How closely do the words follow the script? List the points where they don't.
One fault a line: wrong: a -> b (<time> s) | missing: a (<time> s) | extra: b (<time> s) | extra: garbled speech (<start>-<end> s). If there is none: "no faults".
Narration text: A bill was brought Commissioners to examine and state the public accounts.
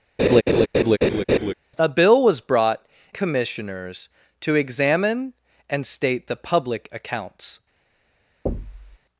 no faults